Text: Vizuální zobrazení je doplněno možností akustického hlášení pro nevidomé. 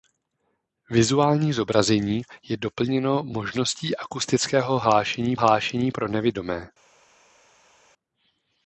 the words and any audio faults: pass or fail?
fail